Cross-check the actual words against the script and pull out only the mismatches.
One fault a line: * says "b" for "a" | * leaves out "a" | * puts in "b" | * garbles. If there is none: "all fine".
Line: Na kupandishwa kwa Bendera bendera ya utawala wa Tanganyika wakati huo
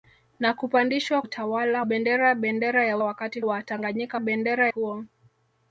* says "utawala" for "kwa"
* says "wakati" for "utawala"
* says "bendera" for "wakati"